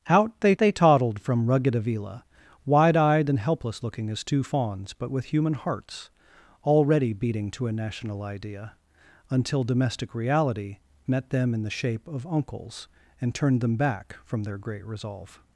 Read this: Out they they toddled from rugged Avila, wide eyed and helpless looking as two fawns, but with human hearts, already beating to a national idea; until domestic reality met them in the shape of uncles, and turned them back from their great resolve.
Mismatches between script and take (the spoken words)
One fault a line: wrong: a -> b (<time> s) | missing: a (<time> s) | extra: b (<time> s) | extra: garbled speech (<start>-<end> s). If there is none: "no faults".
no faults